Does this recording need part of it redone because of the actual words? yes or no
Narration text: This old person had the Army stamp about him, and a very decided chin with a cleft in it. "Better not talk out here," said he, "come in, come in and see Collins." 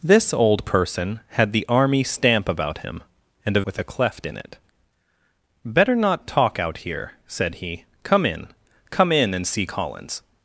yes